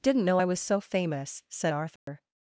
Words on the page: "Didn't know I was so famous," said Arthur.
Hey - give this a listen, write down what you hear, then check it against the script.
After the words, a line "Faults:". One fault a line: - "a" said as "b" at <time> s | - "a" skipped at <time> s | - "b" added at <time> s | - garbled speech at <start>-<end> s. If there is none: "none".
"Didn't know I was so famous," said Arthur.
Faults:
none